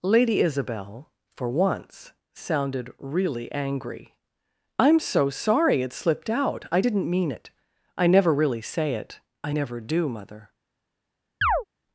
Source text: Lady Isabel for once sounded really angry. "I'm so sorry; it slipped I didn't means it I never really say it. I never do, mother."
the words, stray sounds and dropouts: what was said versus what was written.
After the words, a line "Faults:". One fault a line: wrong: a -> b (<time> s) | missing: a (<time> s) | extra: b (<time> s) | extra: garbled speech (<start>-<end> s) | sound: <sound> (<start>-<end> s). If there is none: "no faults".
Lady Isabel for once sounded really angry. "I'm so sorry; it slipped out I didn't mean it I never really say it. I never do, mother."
Faults:
extra: out (6.3 s)
wrong: means -> mean (7.1 s)
sound: chirp (11.4-11.6 s)